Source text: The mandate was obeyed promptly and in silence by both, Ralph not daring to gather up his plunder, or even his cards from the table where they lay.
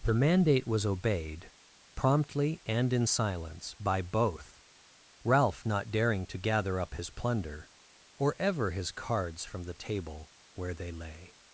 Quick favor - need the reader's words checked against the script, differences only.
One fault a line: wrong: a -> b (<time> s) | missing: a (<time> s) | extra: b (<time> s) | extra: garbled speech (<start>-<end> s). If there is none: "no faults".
wrong: even -> ever (8.4 s)